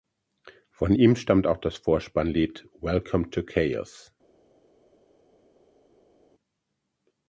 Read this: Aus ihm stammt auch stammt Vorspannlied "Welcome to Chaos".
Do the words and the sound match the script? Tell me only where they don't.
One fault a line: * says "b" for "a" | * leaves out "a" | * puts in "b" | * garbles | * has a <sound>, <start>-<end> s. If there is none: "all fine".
* says "Von" for "Aus"
* says "das" for "stammt"